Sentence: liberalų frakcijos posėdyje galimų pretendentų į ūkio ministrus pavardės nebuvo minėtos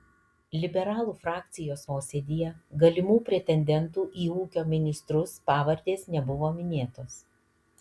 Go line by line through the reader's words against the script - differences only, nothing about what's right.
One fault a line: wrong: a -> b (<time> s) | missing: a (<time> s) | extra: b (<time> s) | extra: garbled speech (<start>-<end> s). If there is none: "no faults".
no faults